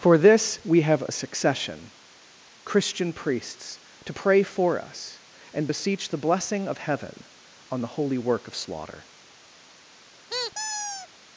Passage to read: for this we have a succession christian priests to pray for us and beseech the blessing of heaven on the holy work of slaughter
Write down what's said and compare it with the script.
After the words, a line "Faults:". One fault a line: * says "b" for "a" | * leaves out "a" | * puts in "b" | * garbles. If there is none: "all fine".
for this we have a succession christian priests to pray for us and beseech the blessing of heaven on the holy work of slaughter
Faults:
all fine